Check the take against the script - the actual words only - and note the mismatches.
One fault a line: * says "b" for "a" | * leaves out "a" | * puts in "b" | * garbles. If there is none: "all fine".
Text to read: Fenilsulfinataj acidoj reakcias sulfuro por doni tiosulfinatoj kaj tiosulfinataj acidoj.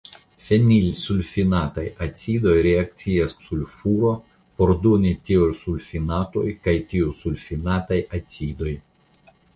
all fine